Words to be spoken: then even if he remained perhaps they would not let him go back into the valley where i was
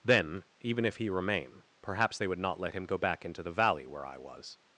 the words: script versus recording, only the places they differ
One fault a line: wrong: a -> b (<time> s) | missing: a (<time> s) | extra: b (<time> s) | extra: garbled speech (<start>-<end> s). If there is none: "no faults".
wrong: remained -> remain (1.1 s)